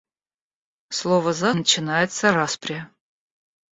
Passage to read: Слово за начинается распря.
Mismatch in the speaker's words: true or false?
false